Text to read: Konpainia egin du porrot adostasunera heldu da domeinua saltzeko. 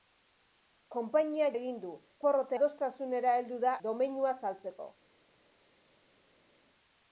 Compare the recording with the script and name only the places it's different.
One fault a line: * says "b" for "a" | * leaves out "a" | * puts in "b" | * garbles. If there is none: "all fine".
all fine